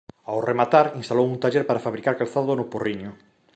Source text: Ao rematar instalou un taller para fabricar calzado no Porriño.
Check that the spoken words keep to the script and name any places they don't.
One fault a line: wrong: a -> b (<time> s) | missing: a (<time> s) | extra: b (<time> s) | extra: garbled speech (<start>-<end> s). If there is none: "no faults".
no faults